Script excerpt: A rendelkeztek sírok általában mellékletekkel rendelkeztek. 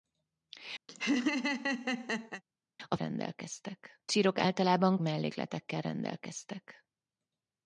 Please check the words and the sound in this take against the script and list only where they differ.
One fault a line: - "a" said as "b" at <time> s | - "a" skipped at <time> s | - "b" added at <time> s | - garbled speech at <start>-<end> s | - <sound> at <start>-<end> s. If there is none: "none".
- laugh at 0.9-2.4 s